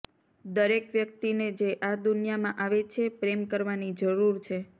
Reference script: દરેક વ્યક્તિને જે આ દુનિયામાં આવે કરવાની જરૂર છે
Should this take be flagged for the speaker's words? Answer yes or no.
yes